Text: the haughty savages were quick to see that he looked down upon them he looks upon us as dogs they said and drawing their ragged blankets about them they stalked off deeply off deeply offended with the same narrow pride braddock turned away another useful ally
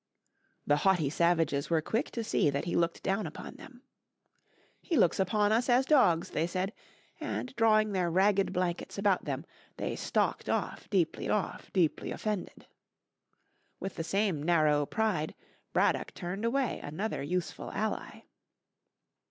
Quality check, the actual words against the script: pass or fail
pass